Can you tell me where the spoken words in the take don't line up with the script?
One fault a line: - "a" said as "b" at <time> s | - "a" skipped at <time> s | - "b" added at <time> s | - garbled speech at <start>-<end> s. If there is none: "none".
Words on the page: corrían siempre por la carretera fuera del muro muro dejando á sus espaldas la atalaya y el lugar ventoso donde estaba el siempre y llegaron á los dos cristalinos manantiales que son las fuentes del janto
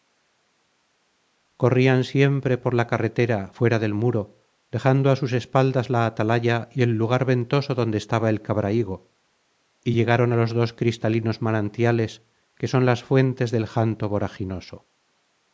- "muro" skipped at 4.2 s
- "siempre" said as "cabrahigo" at 8.5 s